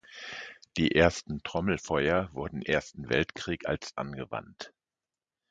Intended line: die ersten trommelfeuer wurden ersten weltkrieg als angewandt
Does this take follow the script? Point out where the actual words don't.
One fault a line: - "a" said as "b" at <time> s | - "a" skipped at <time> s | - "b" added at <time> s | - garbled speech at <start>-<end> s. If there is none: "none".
none